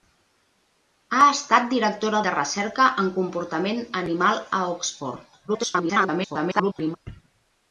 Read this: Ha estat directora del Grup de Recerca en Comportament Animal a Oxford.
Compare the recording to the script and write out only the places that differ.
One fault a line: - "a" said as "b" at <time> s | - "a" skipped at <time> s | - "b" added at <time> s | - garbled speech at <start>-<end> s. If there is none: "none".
- "del Grup" skipped at 2.2 s
- garbled speech at 5.5-7.0 s